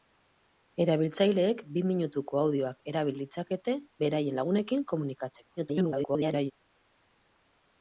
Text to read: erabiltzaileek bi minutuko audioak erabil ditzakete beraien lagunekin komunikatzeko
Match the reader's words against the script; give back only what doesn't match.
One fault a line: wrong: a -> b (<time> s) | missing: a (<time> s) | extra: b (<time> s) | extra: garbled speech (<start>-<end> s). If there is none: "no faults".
extra: garbled speech (5.6-6.5 s)